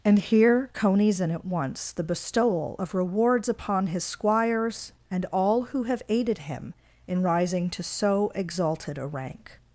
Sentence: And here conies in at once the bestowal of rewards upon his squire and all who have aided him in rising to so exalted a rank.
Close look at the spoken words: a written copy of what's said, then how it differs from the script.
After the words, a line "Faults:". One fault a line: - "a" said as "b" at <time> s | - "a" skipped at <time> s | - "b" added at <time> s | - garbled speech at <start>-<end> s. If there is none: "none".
And here conies in at once the bestowal of rewards upon his squires and all who have aided him in rising to so exalted a rank.
Faults:
- "squire" said as "squires" at 4.0 s